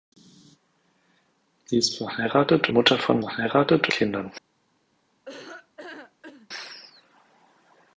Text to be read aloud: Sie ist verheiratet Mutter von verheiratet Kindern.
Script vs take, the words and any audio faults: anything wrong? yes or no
yes